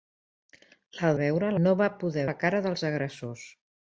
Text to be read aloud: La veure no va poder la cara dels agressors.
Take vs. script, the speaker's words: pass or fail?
pass